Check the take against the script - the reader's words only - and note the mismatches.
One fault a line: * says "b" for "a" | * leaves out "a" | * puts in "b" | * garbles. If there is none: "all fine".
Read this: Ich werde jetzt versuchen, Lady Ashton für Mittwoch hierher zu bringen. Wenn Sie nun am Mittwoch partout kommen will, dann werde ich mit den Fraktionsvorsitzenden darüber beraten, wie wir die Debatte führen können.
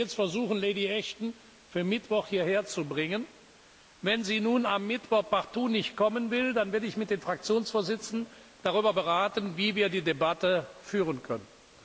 * puts in "nicht"